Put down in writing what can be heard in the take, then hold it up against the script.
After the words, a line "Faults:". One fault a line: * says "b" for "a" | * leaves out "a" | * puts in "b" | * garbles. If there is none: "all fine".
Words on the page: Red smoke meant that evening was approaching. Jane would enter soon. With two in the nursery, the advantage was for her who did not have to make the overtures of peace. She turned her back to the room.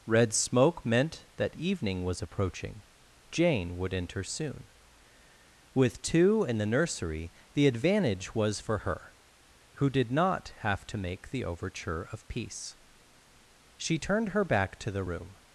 Red smoke meant that evening was approaching. Jane would enter soon. With two in the nursery, the advantage was for her who did not have to make the overture of peace. She turned her back to the room.
Faults:
* says "overture" for "overtures"